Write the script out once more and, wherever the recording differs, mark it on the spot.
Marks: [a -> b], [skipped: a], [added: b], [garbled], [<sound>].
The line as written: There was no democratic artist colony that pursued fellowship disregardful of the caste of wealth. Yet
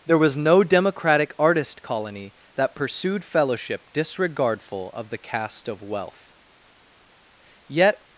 There was no democratic artist colony that pursued fellowship disregardful of the caste of wealth. Yet